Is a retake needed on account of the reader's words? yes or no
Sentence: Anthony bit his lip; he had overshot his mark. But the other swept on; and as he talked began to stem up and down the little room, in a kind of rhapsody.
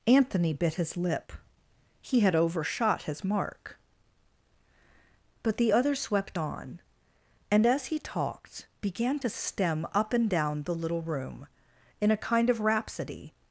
no